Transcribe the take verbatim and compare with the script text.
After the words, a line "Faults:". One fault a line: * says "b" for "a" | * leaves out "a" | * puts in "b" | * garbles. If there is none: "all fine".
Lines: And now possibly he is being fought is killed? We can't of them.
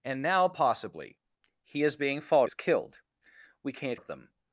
And now possibly he is being fought is killed? We can't of them.
Faults:
all fine